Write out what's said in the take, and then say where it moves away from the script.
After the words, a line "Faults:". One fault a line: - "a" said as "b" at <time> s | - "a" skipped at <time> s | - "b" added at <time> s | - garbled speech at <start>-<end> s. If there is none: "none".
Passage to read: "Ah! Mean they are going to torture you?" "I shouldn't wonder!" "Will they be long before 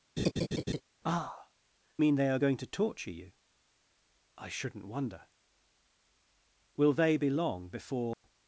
"Ah! Mean they are going to torture you?" "I shouldn't wonder!" "Will they be long before
Faults:
none